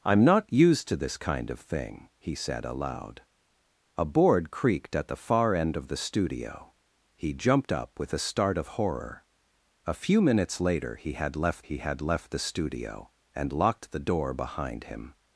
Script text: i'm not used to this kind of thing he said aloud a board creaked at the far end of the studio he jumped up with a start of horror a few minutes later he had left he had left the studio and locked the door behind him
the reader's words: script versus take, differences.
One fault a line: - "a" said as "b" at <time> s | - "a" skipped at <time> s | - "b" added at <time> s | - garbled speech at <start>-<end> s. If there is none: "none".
none